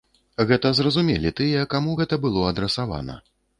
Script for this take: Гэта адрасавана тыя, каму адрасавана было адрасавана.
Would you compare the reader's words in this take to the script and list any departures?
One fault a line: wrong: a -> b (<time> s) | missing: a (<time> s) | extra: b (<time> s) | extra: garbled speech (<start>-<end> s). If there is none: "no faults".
wrong: адрасавана -> зразумелі (0.8 s)
wrong: адрасавана -> гэта (2.0 s)